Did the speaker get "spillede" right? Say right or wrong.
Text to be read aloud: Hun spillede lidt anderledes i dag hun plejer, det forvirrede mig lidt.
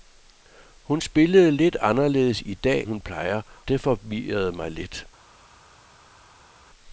right